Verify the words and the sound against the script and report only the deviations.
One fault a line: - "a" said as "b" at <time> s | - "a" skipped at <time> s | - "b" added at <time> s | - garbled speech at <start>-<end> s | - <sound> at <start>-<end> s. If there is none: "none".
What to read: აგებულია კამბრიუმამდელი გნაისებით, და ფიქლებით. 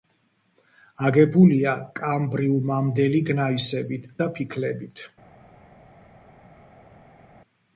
none